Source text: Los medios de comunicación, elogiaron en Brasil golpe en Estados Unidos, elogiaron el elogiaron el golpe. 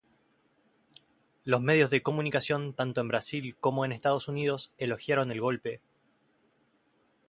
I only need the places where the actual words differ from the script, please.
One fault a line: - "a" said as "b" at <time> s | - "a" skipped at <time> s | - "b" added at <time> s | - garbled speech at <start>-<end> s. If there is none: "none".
- "elogiaron" said as "tanto" at 2.7 s
- "golpe" said as "como" at 3.6 s
- "elogiaron el" skipped at 5.4 s